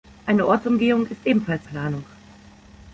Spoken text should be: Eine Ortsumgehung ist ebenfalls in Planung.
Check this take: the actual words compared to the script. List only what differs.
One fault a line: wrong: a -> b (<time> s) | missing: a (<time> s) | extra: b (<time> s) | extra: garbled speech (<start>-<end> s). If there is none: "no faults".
missing: in (1.7 s)